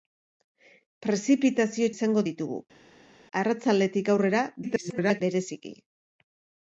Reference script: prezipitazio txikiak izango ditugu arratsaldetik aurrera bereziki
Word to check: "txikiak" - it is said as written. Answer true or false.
false